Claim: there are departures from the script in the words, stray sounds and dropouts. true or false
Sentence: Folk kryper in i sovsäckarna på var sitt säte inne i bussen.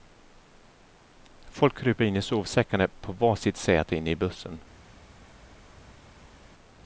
false